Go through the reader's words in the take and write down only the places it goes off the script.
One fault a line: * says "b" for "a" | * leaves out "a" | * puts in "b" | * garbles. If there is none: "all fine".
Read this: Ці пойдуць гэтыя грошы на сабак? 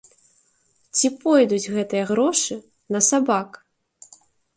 all fine